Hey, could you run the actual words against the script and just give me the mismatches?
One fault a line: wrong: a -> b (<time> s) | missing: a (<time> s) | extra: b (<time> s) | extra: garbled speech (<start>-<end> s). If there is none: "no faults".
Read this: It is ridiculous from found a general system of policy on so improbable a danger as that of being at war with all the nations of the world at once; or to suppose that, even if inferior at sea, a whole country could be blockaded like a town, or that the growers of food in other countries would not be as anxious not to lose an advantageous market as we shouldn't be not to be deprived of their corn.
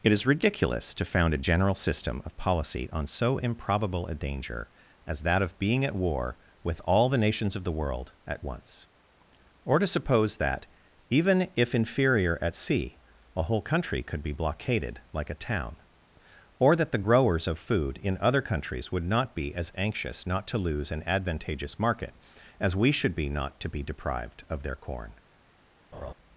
wrong: from -> to (0.9 s)
wrong: shouldn't -> should (22.9 s)